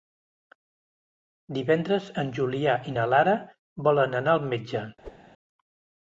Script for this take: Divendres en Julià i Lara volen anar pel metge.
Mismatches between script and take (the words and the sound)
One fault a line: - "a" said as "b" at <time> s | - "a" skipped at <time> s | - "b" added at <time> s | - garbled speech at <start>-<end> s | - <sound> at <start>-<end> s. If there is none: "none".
- "na" added at 3.0 s
- "pel" said as "al" at 4.4 s
- whoosh at 5.0-5.2 s